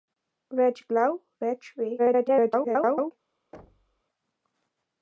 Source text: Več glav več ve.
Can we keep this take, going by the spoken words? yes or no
no